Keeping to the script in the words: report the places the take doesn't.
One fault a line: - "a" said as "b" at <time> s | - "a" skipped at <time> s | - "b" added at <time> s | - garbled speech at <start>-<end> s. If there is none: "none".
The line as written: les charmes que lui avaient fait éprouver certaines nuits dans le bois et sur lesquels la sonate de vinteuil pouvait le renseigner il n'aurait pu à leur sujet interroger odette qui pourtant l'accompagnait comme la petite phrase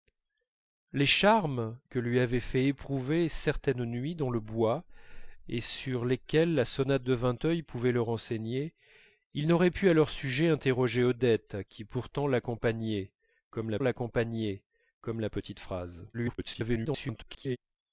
- "l'accompagnait comme la" added at 13.8 s
- garbled speech at 16.1-17.6 s